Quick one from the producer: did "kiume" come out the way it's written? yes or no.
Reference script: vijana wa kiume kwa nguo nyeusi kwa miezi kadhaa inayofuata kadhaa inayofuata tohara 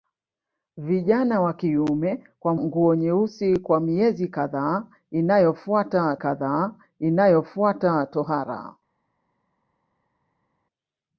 yes